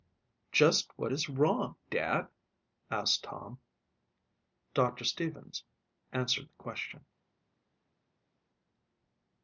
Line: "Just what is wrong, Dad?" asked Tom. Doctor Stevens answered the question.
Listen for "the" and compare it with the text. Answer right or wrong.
right